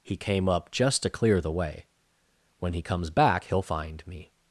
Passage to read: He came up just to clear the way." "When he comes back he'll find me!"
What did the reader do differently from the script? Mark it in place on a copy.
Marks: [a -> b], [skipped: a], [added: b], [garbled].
He came up just to clear the way." "When he comes back he'll find me!"